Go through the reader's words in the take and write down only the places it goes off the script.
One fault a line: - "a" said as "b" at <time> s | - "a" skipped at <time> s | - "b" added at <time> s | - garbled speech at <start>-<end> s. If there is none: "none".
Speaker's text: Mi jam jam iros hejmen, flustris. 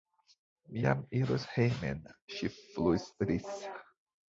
- "jam" skipped at 1.0 s
- "ŝi" added at 2.4 s